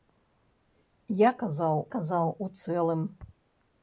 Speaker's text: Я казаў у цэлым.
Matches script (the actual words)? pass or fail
fail